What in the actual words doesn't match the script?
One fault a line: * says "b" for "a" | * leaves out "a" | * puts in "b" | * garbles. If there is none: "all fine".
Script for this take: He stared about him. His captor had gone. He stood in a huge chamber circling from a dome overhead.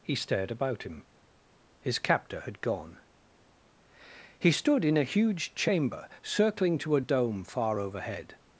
* says "to" for "from"
* puts in "far"